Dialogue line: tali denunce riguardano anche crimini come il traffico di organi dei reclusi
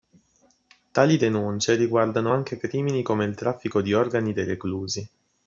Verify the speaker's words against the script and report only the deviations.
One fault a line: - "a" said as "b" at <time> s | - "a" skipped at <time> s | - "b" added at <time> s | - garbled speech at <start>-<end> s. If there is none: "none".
none